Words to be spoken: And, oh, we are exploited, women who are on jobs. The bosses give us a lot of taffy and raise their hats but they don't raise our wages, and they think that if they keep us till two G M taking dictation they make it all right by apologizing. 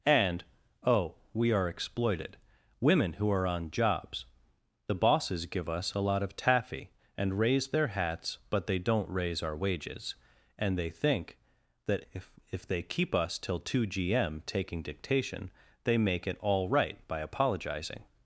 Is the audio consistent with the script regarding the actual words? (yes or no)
no